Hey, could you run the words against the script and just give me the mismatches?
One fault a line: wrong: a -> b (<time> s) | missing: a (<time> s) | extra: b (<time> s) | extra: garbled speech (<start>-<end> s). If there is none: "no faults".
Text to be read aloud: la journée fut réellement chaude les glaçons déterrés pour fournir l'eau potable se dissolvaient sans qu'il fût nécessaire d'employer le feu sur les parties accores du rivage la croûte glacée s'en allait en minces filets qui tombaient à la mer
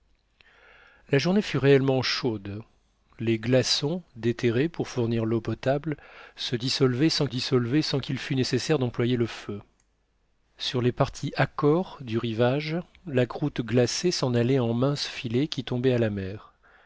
extra: dissolvaient sans (7.3 s)